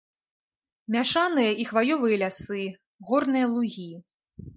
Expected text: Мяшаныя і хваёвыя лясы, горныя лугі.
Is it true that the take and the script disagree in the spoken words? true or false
false